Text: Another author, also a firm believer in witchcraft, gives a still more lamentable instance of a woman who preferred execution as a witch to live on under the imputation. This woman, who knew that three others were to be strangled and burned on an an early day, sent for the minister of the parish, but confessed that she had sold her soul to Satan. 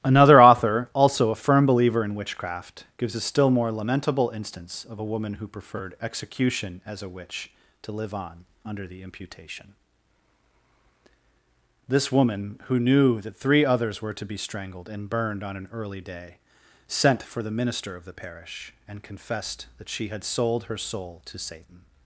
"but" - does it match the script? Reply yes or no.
no